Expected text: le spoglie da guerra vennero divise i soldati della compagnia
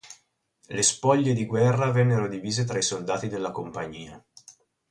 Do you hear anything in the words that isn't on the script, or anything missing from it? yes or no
yes